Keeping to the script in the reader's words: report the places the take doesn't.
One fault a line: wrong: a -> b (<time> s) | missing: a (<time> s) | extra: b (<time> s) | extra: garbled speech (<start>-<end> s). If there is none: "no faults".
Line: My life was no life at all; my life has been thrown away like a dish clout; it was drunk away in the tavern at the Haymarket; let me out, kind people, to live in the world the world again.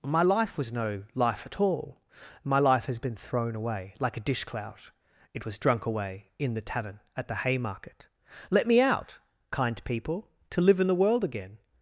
missing: the world (11.2 s)